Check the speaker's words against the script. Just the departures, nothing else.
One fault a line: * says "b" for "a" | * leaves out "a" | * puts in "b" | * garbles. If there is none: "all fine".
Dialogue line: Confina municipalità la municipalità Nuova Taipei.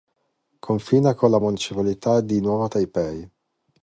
* says "con" for "municipalità"
* puts in "di"